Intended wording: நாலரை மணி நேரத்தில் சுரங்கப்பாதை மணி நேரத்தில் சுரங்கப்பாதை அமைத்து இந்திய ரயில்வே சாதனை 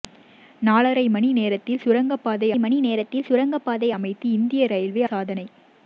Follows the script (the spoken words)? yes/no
yes